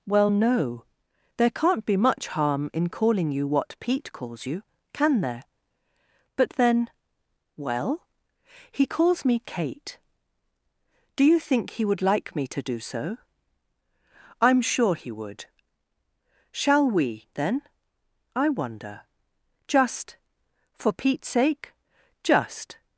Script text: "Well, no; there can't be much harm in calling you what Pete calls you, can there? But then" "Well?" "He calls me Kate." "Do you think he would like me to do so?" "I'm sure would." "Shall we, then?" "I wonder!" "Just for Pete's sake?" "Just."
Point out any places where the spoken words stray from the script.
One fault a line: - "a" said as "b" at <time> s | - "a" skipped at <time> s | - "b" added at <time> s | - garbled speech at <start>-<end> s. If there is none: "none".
- "he" added at 14.9 s